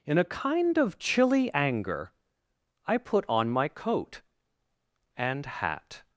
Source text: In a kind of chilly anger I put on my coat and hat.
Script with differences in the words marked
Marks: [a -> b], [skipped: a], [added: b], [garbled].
In a kind of chilly anger I put on my coat and hat.